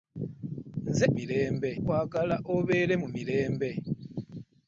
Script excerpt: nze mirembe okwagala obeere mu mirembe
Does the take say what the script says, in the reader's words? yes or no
yes